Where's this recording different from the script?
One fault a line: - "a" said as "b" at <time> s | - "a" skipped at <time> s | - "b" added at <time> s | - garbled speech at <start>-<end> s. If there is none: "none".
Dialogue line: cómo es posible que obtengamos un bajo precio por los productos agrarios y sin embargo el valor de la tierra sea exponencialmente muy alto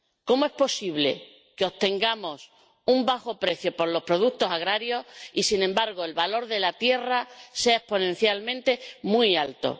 none